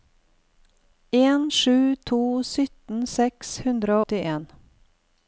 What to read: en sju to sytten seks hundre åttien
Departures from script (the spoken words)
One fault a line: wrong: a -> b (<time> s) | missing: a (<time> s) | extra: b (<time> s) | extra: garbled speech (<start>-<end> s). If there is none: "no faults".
no faults